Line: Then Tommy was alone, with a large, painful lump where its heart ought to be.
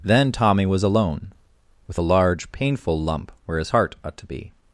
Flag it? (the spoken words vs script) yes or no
yes